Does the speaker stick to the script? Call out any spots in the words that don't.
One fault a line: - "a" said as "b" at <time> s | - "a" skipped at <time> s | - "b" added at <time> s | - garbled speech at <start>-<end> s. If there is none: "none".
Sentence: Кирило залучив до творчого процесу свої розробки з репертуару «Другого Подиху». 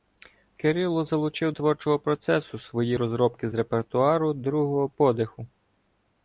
- "до" skipped at 1.5 s